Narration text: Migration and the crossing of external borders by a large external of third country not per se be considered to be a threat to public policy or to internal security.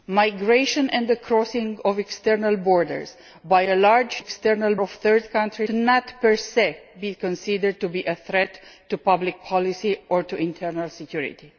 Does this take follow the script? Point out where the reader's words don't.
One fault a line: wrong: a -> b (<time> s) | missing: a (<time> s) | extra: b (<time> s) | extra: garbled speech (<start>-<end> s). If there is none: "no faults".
no faults